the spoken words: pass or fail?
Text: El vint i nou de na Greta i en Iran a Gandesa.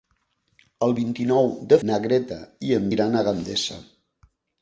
pass